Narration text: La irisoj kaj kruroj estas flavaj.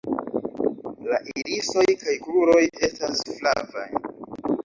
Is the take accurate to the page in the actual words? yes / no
yes